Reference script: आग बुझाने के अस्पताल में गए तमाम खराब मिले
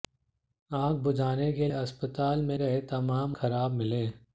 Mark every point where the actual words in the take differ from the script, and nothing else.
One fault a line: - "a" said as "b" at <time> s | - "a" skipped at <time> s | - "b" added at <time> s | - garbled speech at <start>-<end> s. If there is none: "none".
none